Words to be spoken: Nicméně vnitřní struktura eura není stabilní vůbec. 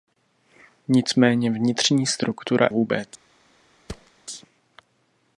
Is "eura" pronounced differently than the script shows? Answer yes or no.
yes